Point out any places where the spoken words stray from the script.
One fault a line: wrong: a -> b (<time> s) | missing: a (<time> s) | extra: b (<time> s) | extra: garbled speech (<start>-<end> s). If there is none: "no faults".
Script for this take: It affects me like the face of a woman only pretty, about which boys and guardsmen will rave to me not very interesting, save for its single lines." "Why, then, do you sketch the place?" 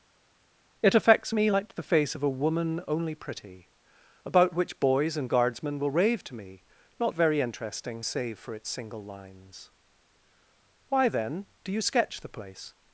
no faults